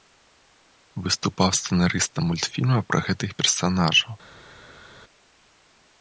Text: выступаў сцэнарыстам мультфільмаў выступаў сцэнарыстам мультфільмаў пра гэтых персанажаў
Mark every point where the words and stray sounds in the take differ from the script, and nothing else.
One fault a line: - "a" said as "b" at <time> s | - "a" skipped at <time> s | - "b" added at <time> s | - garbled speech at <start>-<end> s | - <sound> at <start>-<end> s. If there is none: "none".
- "выступаў сцэнарыстам мультфільмаў" skipped at 2.8 s